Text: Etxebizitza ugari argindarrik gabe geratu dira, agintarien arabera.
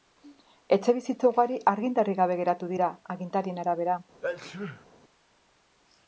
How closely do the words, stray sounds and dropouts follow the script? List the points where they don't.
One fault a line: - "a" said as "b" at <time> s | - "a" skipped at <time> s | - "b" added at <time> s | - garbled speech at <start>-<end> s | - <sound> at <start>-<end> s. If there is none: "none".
- sneeze at 4.2-4.9 s